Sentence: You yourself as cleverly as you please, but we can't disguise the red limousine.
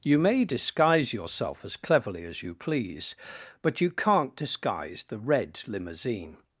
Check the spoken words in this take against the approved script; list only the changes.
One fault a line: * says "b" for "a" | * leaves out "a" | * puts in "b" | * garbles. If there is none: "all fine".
* puts in "may disguise"
* says "you" for "we"